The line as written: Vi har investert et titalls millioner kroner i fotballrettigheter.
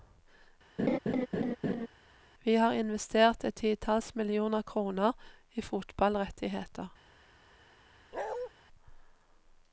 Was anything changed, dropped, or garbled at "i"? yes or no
no